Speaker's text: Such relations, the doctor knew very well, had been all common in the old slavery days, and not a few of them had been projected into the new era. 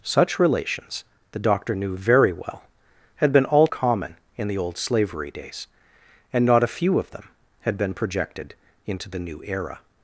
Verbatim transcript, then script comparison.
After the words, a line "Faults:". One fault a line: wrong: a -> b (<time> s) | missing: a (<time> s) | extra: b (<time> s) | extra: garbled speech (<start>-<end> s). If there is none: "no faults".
Such relations, the doctor knew very well, had been all common in the old slavery days, and not a few of them had been projected into the new era.
Faults:
no faults